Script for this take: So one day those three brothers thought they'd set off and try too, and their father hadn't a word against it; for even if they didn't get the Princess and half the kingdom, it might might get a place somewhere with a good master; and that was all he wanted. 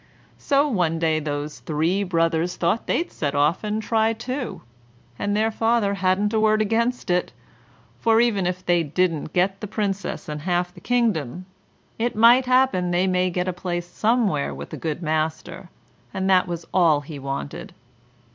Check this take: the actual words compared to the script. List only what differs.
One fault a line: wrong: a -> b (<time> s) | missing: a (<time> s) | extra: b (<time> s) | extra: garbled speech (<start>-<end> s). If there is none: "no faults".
extra: happen they (12.4 s)